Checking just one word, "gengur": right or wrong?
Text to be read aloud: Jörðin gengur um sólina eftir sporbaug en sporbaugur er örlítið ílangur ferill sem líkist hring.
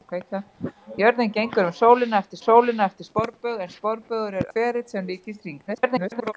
right